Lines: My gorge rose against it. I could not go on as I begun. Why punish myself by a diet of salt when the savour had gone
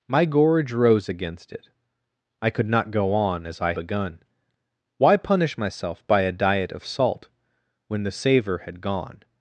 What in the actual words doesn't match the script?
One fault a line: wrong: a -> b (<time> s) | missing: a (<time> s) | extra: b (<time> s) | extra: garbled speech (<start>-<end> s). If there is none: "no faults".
no faults